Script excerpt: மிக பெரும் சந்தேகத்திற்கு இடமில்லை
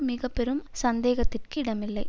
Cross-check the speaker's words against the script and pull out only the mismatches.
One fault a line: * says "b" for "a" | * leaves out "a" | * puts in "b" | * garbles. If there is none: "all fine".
all fine